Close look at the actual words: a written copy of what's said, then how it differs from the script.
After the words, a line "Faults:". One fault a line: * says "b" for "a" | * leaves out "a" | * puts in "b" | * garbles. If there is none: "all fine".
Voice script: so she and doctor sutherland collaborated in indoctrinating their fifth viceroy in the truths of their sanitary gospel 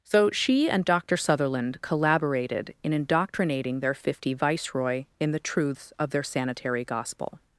so she and doctor sutherland collaborated in indoctrinating their fifty viceroy in the truths of their sanitary gospel
Faults:
* says "fifty" for "fifth"